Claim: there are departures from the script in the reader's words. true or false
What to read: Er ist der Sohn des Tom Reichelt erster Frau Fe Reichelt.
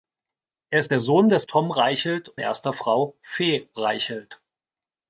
false